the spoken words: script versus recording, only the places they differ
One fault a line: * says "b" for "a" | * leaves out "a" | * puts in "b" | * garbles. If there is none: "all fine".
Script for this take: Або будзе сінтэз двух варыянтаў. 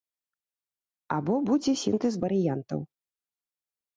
* leaves out "двух"